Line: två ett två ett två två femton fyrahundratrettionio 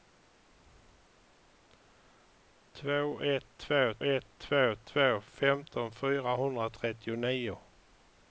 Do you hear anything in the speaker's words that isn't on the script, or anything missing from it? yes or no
no